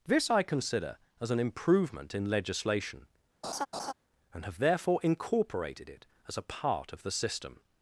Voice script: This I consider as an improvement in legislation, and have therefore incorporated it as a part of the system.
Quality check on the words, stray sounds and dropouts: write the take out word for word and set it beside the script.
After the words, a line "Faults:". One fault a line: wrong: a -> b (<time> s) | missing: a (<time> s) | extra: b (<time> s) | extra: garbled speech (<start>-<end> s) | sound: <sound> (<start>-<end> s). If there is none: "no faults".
This I consider as an improvement in legislation, and have therefore incorporated it as a part of the system.
Faults:
sound: laugh (3.4-3.9 s)